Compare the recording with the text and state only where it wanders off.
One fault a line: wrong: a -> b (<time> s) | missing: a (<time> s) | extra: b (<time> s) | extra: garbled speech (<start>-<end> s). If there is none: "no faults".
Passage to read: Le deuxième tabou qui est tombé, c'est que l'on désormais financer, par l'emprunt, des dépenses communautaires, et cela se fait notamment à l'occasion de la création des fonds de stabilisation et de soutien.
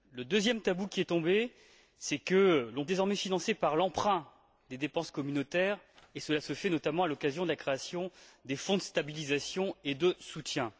no faults